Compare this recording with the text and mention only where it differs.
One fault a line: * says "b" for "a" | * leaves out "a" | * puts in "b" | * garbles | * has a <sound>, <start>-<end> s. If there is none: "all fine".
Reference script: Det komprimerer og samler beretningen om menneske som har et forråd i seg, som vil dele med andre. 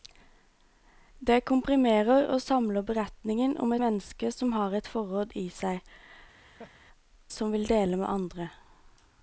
* has a laugh, 6.4-6.8 s